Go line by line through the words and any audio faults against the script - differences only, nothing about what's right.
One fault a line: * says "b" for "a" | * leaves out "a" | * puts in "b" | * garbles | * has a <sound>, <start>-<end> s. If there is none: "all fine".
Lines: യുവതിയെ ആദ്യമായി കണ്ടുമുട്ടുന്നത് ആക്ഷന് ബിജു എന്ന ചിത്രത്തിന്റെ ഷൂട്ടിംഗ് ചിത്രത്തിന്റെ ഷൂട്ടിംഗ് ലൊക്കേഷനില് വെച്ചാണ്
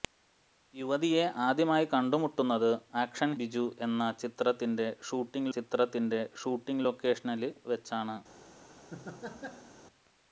* has a laugh, 8.9-9.8 s